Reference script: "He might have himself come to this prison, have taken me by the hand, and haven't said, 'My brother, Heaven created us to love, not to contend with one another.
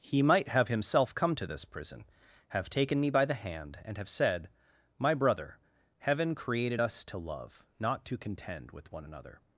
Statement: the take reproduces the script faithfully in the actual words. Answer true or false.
false